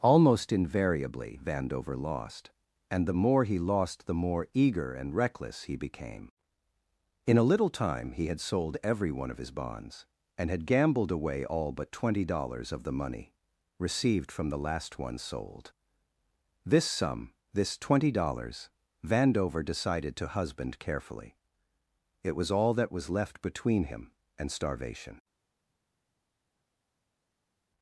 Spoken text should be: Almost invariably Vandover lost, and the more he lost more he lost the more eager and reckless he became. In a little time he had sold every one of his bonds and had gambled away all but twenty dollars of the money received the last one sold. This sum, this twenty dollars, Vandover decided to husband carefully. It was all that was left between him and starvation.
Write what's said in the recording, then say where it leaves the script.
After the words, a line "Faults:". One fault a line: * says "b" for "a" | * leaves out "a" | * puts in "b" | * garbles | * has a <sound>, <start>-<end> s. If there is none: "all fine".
Almost invariably Vandover lost, and the more he lost the more eager and reckless he became. In a little time he had sold every one of his bonds and had gambled away all but twenty dollars of the money received from the last one sold. This sum, this twenty dollars, Vandover decided to husband carefully. It was all that was left between him and starvation.
Faults:
* leaves out "more he lost"
* puts in "from"